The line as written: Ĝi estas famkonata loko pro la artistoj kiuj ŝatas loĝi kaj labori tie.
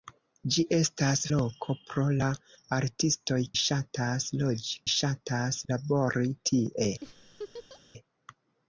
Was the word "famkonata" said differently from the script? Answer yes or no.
yes